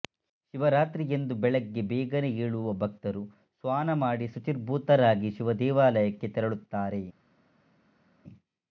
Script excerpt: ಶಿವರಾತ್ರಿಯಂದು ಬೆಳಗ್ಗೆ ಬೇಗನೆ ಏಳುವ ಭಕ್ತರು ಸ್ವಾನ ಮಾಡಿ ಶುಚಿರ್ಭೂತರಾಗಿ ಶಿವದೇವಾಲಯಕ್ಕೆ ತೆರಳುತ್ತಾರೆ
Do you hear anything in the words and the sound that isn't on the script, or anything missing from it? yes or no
no